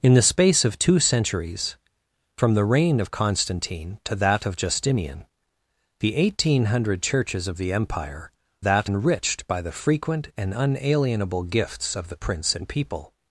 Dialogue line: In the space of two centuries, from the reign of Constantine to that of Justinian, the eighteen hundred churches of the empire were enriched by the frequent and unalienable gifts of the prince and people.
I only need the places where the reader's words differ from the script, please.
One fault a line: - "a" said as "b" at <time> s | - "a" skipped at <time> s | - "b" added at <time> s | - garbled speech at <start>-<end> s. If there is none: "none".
- "were" said as "that" at 8.6 s